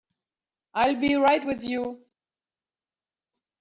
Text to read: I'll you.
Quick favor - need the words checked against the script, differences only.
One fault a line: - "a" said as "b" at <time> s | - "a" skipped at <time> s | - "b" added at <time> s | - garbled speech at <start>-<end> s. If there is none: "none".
- "be right with" added at 1.0 s